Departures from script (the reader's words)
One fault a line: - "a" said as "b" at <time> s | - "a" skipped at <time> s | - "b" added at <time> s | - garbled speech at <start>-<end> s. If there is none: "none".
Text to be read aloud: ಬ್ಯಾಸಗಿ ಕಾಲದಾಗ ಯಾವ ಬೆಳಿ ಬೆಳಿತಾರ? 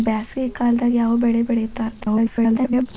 - garbled speech at 2.0-2.9 s